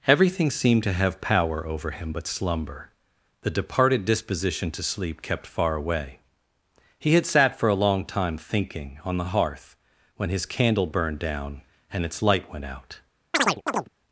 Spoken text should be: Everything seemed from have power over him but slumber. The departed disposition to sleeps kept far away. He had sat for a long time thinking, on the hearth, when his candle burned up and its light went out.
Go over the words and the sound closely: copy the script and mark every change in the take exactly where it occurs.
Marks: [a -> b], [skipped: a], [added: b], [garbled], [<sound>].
Everything seemed [from -> to] have power over him but slumber. The departed disposition to [sleeps -> sleep] kept far away. He had sat for a long time thinking, on the hearth, when his candle burned [up -> down] and its light went out. [chirp]